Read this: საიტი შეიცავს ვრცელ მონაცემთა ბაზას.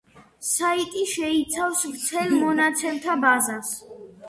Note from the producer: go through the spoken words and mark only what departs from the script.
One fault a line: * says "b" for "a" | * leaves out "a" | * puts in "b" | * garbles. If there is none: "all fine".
all fine